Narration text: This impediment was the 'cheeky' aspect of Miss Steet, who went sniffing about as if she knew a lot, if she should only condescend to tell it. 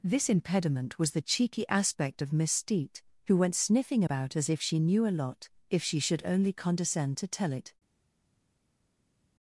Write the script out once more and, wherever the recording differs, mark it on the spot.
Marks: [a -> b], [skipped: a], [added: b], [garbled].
This impediment was the 'cheeky' aspect of Miss Steet, who went sniffing about as if she knew a lot, if she should only condescend to tell it.